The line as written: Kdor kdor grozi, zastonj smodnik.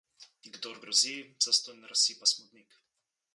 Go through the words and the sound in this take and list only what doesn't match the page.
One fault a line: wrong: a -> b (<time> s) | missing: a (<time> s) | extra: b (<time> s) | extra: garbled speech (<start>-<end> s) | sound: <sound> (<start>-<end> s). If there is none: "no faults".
missing: kdor (0.8 s)
extra: razsipa (1.9 s)